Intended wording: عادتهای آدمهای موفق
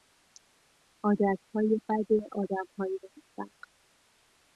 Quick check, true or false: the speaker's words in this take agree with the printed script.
false